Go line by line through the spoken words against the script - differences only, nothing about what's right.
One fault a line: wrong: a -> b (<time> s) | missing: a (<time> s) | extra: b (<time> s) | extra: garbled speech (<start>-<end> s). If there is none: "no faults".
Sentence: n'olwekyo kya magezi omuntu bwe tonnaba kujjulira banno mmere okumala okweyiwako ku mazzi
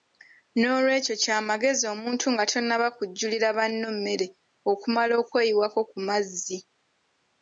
wrong: bwe -> nga (2.3 s)